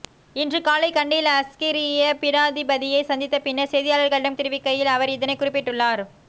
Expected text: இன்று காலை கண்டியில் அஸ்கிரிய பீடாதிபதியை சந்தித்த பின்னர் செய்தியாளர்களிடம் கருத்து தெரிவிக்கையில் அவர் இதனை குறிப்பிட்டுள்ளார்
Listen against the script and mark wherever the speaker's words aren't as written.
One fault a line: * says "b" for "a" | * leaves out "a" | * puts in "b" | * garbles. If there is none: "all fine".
* leaves out "கருத்து"